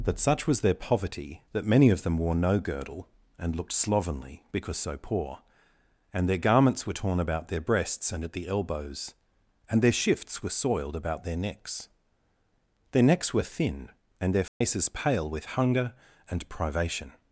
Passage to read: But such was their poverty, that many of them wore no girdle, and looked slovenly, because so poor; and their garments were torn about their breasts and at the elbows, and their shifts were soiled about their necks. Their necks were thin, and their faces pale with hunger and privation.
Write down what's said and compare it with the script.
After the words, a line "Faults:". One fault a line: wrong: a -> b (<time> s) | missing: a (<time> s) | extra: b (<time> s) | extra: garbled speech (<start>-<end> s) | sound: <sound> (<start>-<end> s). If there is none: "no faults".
That such was their poverty, that many of them wore no girdle, and looked slovenly, because so poor; and their garments were torn about their breasts and at the elbows, and their shifts were soiled about their necks. Their necks were thin, and their faces pale with hunger and privation.
Faults:
wrong: But -> That (0.0 s)
sound: dropout (14.5-14.6 s)